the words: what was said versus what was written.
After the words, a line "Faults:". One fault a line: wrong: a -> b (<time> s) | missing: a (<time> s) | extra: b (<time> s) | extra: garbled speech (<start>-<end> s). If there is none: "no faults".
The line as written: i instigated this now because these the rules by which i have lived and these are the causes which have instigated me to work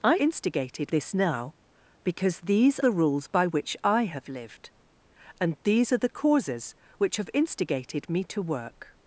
i instigated this now because these the rules by which i have lived and these are the causes which have instigated me to work
Faults:
no faults